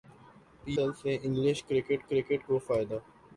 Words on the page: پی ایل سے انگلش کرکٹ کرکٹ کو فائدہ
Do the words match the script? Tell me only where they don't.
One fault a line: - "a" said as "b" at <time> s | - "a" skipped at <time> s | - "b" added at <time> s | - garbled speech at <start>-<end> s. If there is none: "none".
none